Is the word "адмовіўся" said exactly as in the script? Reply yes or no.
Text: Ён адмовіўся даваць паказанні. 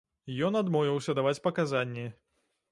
yes